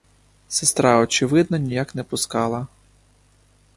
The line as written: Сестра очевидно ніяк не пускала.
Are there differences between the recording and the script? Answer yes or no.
no